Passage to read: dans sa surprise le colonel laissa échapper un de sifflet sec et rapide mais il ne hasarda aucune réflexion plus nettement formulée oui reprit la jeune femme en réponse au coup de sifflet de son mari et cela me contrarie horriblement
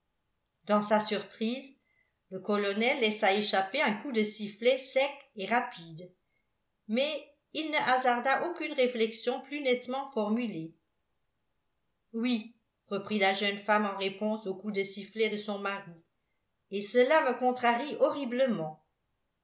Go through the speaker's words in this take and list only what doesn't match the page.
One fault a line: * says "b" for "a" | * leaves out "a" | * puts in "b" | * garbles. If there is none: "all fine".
* puts in "coup"